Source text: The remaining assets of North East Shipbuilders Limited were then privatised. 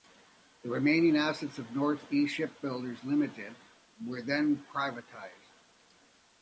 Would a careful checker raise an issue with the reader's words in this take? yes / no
no